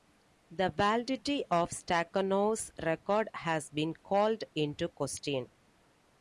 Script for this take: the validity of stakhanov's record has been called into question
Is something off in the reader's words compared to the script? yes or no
no